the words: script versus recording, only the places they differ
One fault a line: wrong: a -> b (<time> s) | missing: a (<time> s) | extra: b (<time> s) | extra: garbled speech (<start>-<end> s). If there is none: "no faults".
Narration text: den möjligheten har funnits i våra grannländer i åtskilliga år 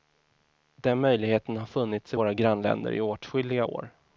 no faults